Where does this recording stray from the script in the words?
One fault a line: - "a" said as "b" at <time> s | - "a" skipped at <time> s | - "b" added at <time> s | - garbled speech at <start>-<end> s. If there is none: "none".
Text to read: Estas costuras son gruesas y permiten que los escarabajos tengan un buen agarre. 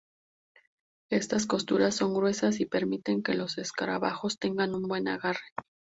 none